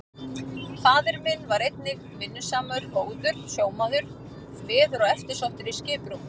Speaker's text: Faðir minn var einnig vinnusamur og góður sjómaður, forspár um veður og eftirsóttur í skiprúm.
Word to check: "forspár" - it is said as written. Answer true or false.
false